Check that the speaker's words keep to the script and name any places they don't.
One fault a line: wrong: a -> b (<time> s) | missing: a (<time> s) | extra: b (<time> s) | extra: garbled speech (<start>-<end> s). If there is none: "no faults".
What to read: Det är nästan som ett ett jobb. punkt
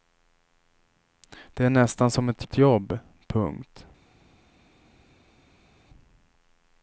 no faults